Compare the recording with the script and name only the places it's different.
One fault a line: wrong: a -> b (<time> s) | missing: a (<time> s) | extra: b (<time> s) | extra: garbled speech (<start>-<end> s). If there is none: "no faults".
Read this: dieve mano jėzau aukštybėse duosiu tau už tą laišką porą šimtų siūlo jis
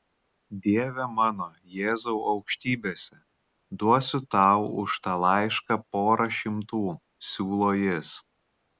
no faults